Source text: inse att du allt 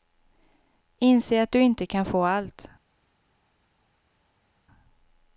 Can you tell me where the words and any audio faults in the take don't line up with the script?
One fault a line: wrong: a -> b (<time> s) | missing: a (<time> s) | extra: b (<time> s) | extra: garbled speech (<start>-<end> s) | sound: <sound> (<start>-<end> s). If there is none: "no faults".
extra: inte kan få (1.6 s)